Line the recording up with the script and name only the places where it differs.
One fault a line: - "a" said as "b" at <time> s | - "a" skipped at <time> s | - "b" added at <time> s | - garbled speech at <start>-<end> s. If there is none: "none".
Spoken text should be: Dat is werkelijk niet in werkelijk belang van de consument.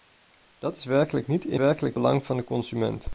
none